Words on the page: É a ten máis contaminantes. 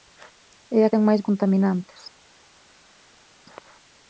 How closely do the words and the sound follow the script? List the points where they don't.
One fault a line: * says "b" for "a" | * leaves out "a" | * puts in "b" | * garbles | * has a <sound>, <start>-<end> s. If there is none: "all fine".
all fine